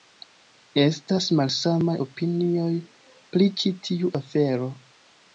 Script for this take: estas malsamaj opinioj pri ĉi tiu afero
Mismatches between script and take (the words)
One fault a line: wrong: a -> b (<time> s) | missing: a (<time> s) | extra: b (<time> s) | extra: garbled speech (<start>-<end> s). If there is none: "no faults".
no faults